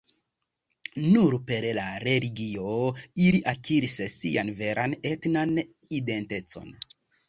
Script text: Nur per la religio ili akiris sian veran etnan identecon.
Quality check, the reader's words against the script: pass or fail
pass